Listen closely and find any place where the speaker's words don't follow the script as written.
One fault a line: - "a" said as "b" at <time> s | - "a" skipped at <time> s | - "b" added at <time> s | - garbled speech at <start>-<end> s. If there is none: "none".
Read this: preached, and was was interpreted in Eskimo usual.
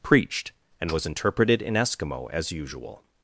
- "was" skipped at 1.1 s
- "as" added at 2.3 s